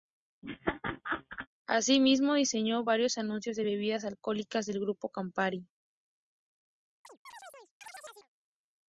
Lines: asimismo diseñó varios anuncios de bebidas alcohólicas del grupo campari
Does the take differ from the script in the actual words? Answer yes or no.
no